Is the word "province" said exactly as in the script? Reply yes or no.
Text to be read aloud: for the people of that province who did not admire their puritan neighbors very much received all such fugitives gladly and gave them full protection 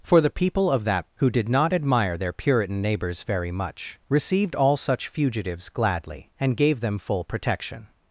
no